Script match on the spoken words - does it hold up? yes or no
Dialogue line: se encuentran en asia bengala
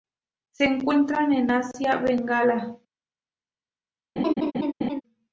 yes